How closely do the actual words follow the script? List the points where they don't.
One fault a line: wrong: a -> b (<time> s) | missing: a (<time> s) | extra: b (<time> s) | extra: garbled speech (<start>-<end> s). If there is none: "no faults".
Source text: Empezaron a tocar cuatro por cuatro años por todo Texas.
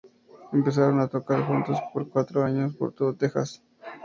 wrong: cuatro -> juntos (1.4 s)